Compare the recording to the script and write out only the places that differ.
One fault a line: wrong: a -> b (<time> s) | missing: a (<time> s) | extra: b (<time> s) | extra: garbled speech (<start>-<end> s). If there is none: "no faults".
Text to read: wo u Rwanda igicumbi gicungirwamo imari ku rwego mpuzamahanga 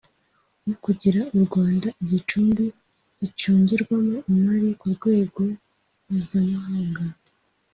extra: kugira (0.8 s)